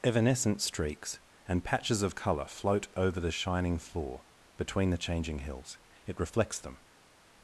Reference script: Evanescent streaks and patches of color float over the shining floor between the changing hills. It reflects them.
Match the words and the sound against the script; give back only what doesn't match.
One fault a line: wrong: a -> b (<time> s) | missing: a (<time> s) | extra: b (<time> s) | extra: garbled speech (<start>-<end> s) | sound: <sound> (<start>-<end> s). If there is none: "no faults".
no faults